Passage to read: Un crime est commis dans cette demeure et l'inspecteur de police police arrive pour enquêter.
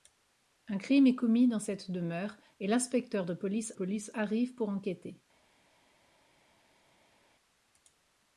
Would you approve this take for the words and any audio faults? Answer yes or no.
yes